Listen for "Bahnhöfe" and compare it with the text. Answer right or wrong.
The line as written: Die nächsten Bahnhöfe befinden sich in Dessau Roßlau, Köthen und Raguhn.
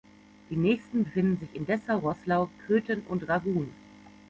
wrong